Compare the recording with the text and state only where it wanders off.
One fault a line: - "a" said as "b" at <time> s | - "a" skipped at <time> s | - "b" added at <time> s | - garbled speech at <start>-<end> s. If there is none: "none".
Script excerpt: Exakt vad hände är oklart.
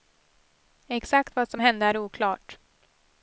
- "som" added at 1.5 s